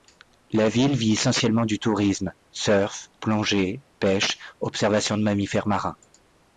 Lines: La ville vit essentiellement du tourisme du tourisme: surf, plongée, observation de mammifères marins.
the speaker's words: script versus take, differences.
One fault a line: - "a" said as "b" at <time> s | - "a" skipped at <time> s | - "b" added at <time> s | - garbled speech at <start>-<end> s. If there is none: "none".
- "du tourisme" skipped at 2.3 s
- "pêche" added at 4.0 s